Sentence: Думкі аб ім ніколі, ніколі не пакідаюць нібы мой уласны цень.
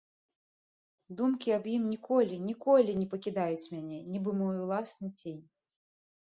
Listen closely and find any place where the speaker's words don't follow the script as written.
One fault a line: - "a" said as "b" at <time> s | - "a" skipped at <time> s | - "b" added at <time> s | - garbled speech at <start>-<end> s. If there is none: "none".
- "мяне" added at 3.8 s